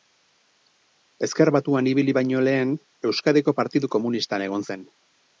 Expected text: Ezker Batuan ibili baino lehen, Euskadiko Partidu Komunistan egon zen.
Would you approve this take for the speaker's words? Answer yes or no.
yes